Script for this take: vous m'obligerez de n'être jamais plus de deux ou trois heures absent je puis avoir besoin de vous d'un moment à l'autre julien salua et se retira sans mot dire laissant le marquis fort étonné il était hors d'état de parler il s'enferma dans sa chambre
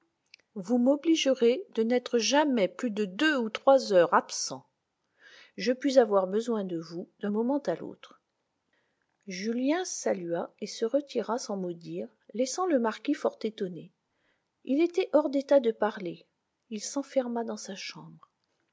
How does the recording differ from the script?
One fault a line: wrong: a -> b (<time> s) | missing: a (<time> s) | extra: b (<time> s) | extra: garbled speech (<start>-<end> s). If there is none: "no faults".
no faults